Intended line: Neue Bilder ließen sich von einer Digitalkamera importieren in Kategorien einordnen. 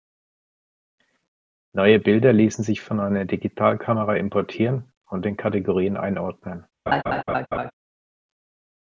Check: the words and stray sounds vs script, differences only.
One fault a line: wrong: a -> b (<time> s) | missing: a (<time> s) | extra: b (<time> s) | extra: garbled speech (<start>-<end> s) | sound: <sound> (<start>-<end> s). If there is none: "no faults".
extra: und (5.1 s)
sound: laugh (6.9-7.7 s)